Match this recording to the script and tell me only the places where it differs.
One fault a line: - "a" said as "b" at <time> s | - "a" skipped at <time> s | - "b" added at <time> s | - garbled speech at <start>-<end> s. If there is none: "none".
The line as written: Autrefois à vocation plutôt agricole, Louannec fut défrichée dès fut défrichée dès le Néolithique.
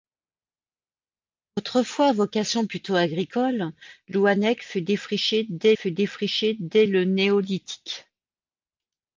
none